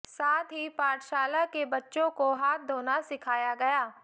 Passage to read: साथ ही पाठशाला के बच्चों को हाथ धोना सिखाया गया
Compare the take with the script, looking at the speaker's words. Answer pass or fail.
pass